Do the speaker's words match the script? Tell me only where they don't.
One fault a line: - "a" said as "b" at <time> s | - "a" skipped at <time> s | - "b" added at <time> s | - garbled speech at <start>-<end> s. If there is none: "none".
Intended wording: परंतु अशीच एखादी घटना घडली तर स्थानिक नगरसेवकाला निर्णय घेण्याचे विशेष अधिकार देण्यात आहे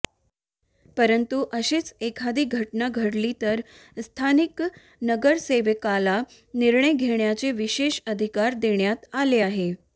- "आले" added at 9.2 s